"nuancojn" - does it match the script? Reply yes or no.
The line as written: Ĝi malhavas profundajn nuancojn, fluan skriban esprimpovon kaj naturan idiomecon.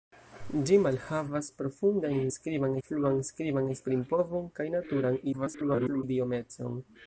no